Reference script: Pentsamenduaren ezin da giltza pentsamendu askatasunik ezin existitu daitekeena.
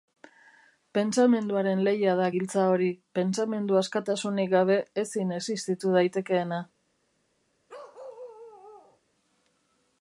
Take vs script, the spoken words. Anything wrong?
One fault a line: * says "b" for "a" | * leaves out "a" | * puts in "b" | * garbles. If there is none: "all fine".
* says "lehia" for "ezin"
* puts in "hori"
* puts in "gabe"